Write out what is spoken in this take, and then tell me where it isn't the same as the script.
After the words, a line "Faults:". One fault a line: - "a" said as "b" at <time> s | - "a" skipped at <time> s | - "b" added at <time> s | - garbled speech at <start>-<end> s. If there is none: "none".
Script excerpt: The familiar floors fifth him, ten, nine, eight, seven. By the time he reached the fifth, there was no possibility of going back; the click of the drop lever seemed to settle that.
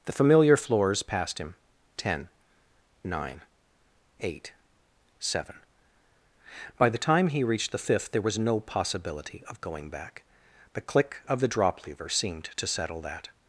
The familiar floors passed him, ten, nine, eight, seven. By the time he reached the fifth, there was no possibility of going back; the click of the drop lever seemed to settle that.
Faults:
- "fifth" said as "passed" at 1.0 s